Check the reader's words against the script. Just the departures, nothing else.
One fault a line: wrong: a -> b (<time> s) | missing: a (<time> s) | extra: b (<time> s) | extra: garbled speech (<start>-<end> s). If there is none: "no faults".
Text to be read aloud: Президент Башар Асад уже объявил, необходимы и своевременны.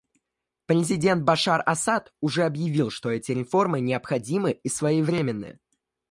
extra: что эти реформы (2.9 s)